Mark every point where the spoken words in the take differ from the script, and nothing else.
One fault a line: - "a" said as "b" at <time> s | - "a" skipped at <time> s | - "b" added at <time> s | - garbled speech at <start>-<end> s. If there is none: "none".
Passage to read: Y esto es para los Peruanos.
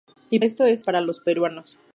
none